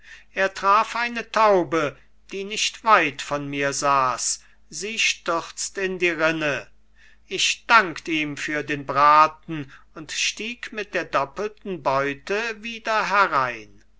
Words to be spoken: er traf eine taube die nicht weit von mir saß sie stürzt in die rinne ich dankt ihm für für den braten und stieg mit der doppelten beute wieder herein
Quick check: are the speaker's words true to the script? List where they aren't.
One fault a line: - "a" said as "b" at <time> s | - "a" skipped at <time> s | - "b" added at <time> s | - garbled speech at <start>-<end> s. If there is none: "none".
- "für" skipped at 8.6 s